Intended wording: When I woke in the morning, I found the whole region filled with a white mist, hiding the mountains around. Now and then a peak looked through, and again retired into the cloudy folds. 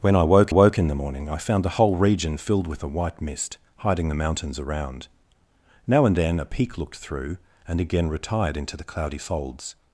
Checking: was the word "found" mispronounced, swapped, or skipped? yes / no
no